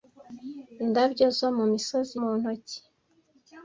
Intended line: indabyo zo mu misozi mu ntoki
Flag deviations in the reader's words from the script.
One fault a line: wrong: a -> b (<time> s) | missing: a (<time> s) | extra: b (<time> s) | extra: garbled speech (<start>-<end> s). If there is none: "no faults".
no faults